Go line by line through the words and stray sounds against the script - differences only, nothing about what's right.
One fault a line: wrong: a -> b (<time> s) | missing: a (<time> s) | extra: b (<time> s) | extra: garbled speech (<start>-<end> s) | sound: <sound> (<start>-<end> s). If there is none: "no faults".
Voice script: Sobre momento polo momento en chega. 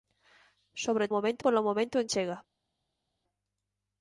no faults